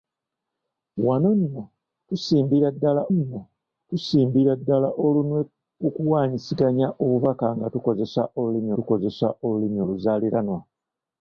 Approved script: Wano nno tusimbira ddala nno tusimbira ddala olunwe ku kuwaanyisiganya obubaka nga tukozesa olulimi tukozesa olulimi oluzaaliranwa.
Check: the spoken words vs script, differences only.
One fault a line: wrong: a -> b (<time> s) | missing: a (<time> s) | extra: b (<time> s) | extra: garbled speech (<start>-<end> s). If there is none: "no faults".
no faults